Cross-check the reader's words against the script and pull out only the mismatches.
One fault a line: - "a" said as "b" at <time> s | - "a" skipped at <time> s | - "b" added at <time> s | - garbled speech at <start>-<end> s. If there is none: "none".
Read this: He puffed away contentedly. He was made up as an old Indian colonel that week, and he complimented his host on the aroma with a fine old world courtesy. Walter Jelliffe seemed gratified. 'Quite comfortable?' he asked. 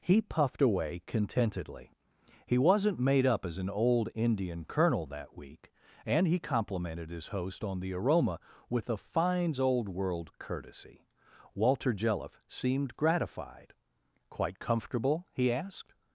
- "was" said as "wasn't" at 2.6 s
- "fine" said as "fines" at 9.0 s